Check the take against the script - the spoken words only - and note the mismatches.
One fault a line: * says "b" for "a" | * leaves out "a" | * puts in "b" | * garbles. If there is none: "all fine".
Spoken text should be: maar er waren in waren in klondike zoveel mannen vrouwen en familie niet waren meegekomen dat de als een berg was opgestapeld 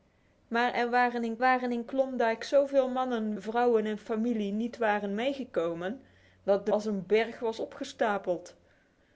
all fine